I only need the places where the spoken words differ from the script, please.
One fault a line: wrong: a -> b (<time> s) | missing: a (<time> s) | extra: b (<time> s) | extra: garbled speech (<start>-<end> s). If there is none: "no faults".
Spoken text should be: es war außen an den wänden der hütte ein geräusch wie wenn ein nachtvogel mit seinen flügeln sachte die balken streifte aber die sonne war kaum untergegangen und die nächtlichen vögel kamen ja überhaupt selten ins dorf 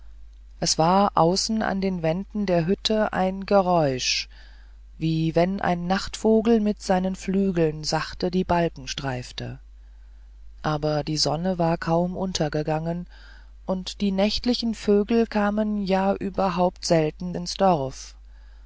no faults